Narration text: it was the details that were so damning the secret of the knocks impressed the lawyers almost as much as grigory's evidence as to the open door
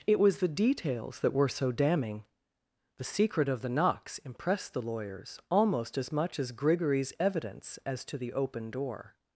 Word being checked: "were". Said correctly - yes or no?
yes